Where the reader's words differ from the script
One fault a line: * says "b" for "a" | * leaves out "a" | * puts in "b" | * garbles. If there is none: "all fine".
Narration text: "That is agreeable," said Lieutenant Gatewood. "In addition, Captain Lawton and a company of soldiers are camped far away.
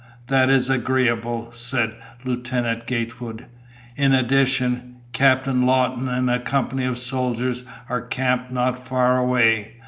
* puts in "not"